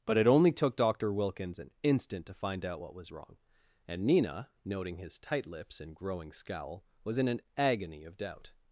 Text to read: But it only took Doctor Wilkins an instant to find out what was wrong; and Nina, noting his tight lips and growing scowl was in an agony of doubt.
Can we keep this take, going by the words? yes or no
yes